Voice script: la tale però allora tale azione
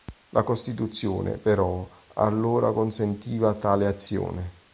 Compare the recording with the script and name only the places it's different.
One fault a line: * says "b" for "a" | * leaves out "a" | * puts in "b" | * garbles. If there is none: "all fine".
* says "costituzione" for "tale"
* puts in "consentiva"